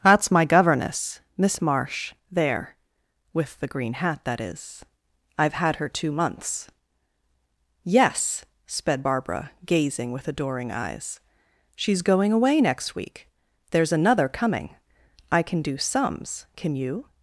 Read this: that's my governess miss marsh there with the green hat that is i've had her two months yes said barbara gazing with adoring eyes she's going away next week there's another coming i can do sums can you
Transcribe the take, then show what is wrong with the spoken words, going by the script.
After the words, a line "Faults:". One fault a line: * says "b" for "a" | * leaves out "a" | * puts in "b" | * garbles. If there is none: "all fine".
that's my governess miss marsh there with the green hat that is i've had her two months yes sped barbara gazing with adoring eyes she's going away next week there's another coming i can do sums can you
Faults:
* says "sped" for "said"